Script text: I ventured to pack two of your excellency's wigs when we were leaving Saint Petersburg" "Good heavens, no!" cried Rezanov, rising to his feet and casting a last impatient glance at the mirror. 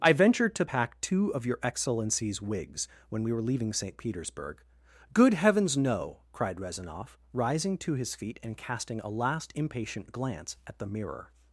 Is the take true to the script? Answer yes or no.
yes